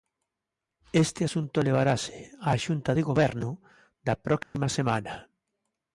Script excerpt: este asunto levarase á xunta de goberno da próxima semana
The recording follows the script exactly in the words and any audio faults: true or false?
false